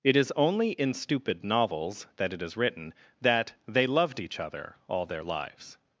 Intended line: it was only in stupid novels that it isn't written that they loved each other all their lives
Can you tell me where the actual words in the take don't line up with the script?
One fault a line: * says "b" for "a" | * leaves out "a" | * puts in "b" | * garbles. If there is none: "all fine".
* says "is" for "was"
* says "is" for "isn't"